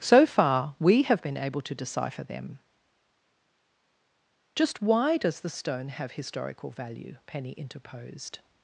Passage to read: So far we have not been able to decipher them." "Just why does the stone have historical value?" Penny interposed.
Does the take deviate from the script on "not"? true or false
true